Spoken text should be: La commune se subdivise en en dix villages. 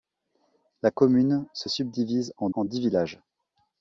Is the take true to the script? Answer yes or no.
yes